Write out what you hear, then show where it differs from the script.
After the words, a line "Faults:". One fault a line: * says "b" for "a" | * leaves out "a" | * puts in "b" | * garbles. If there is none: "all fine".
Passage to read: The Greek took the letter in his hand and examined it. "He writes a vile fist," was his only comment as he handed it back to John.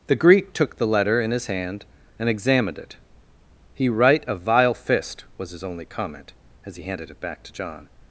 The Greek took the letter in his hand and examined it. "He write a vile fist," was his only comment as he handed it back to John.
Faults:
* says "write" for "writes"